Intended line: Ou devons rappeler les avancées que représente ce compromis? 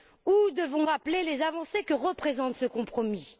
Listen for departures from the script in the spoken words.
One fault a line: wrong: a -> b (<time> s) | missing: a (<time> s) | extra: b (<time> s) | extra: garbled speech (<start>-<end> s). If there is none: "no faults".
no faults